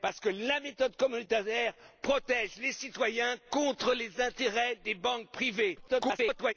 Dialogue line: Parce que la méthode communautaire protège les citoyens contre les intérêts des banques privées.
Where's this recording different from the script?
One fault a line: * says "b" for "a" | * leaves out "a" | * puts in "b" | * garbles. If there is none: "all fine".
* garbles